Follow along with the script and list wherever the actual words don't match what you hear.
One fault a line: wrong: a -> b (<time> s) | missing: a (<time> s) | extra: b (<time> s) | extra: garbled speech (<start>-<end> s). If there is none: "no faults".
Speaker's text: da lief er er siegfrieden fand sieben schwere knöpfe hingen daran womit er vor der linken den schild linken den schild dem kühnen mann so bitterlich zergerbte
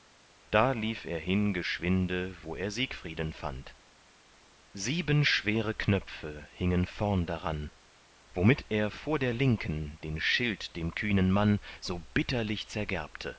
extra: hin geschwinde wo (1.2 s)
extra: vorn (6.9 s)
missing: linken den schild (10.8 s)